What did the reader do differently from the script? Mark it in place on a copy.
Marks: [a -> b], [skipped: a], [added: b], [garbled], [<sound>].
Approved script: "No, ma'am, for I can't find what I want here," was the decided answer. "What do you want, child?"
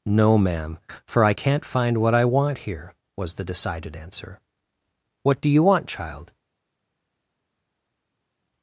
"No, ma'am, for I can't find what I want here," was the decided answer. "What do you want, child?"